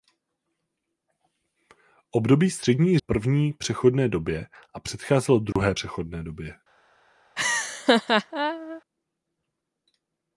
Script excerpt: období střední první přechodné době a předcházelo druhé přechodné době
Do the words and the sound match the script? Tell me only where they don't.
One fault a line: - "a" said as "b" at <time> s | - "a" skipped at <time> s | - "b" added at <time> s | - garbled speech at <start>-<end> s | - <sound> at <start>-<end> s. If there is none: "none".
- dropout at 5.5-5.6 s
- laugh at 7.4-8.8 s